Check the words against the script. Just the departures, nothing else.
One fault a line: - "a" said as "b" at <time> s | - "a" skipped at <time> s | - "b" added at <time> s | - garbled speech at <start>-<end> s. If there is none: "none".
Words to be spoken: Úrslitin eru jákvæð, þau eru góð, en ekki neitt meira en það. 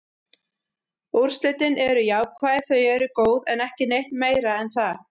none